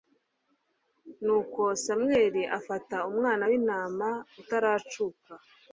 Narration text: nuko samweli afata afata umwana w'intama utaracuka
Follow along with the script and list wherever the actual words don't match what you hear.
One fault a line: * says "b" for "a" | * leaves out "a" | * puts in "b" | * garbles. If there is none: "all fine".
* leaves out "afata"